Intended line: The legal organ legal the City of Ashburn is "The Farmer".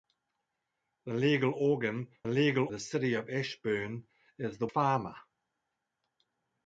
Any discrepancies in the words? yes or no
no